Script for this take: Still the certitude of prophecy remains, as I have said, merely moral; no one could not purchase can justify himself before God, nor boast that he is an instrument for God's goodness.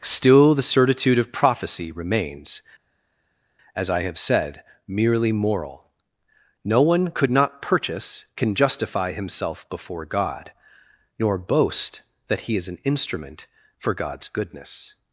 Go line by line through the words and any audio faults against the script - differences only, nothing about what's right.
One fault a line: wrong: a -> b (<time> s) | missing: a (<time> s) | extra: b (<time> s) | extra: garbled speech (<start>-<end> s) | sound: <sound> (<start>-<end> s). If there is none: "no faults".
no faults